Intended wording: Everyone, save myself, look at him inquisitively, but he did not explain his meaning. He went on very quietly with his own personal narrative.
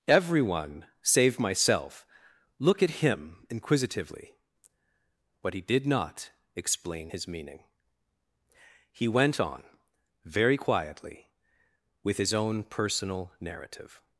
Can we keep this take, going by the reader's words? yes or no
yes